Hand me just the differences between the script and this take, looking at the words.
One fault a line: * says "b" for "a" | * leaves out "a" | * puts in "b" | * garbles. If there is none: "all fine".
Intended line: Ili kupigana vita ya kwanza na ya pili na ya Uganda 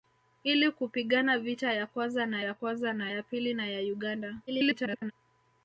* puts in "kwanza na ya"
* garbles